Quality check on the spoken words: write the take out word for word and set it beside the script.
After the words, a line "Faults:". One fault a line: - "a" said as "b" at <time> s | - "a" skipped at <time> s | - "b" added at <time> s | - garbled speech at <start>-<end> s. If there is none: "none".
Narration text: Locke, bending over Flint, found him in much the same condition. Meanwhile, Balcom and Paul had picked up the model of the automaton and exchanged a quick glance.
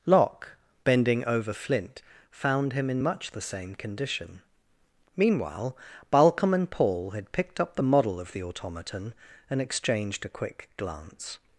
Locke, bending over Flint, found him in much the same condition. Meanwhile, Balcom and Paul had picked up the model of the automaton and exchanged a quick glance.
Faults:
none